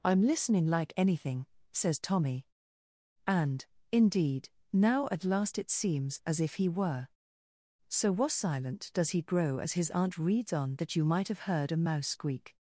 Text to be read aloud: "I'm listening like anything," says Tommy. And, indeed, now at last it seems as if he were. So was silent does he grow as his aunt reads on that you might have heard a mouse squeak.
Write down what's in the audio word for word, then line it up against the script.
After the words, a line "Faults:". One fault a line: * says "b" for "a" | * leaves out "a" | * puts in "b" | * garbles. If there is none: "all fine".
"I'm listening like anything," says Tommy. And, indeed, now at last it seems as if he were. So was silent does he grow as his aunt reads on that you might have heard a mouse squeak.
Faults:
all fine